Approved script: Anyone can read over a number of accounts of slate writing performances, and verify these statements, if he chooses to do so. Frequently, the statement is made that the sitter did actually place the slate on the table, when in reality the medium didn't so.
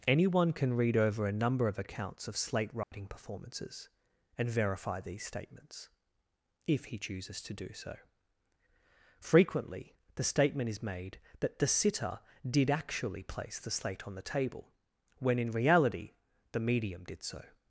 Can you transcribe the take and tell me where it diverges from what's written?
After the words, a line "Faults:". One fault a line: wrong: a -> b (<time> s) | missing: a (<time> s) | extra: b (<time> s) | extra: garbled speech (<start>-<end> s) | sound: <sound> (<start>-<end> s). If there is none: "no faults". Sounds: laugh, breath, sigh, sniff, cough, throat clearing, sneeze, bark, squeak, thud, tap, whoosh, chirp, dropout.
Anyone can read over a number of accounts of slate writing performances, and verify these statements, if he chooses to do so. Frequently, the statement is made that the sitter did actually place the slate on the table, when in reality the medium did so.
Faults:
sound: dropout (2.8-2.9 s)
wrong: didn't -> did (17.0 s)